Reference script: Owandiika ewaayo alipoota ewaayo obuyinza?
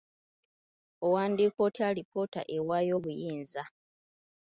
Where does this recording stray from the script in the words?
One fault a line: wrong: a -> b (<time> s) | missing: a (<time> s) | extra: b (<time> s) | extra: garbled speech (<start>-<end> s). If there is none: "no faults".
wrong: ewaayo -> otya (1.7 s)